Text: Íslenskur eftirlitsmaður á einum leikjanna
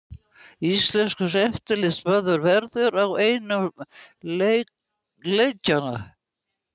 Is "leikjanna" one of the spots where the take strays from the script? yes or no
no